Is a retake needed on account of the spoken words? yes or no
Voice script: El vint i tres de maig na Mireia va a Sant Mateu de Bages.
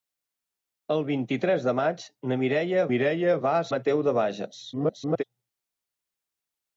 yes